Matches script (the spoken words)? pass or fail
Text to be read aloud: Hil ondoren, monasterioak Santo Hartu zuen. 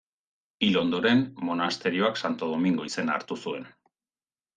fail